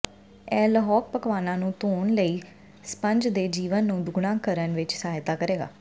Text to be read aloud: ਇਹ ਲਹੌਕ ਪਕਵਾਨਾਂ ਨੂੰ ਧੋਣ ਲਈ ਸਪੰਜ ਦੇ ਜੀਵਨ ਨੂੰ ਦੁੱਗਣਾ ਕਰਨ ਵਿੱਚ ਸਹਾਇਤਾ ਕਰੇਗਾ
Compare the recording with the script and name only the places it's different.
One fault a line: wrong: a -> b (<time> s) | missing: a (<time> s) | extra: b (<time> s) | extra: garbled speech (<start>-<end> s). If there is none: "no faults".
no faults